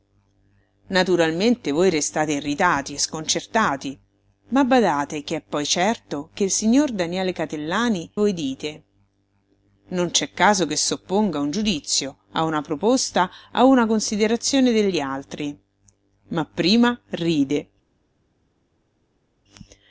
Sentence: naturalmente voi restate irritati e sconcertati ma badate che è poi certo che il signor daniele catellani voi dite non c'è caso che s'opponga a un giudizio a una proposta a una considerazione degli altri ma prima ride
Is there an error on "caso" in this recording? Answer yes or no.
no